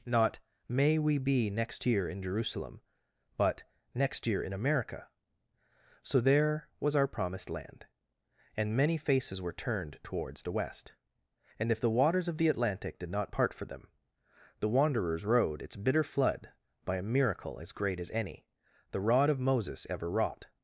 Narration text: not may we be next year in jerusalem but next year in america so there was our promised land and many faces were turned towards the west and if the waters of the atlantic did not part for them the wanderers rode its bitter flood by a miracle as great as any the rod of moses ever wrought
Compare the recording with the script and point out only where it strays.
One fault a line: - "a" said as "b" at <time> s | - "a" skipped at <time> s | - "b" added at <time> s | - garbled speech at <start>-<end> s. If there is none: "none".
none